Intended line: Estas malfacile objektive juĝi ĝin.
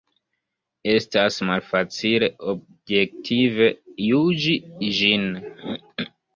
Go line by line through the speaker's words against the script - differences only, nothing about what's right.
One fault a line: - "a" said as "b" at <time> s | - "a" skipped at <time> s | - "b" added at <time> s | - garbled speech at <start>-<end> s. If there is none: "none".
none